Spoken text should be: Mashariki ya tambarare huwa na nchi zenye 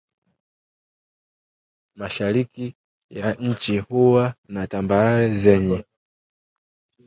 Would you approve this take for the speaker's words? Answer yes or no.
no